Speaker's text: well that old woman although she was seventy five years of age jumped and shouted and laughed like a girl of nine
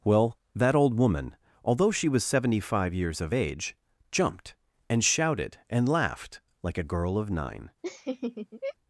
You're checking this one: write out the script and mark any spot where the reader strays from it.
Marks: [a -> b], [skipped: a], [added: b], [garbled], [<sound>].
well that old woman although she was seventy five years of age jumped and shouted and laughed like a girl of nine [laugh]